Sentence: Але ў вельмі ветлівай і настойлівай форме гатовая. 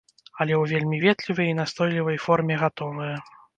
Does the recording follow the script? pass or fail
pass